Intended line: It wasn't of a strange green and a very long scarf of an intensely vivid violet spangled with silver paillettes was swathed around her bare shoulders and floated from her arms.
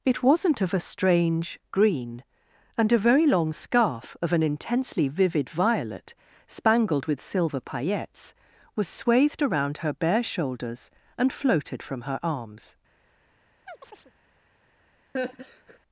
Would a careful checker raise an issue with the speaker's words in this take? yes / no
no